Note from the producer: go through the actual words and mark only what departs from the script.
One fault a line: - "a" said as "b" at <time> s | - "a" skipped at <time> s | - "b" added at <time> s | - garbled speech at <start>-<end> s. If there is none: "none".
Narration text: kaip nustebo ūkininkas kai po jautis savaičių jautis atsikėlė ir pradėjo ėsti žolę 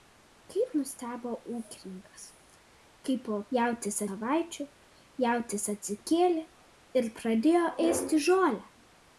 none